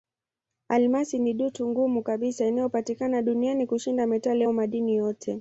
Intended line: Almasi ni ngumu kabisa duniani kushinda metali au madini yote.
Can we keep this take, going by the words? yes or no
no